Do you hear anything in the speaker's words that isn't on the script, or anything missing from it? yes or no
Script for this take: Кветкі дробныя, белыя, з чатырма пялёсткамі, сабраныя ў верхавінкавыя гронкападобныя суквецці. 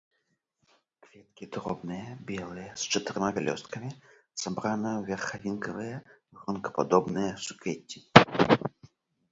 no